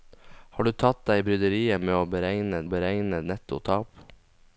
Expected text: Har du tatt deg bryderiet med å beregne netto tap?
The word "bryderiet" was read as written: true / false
true